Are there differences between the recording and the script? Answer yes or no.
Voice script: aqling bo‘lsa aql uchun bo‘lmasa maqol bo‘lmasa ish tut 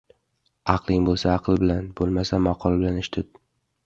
yes